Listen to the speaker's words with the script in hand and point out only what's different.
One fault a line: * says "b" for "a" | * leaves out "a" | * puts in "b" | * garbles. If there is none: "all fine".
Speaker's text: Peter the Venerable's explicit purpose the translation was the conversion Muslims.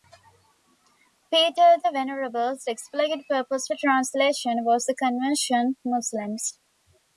all fine